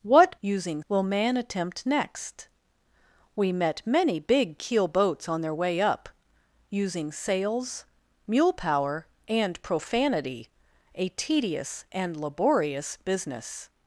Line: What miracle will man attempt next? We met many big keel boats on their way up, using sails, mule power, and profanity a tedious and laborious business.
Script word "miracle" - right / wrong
wrong